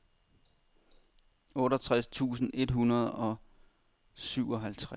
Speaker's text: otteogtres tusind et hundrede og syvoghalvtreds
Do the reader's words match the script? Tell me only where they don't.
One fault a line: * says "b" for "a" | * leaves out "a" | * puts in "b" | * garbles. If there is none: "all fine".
all fine